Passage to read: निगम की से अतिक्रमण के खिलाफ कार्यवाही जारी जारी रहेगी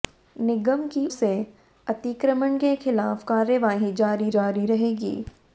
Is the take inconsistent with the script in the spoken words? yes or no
no